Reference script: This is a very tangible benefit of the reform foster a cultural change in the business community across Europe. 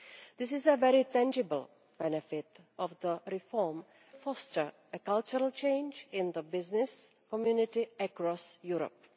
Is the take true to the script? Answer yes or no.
yes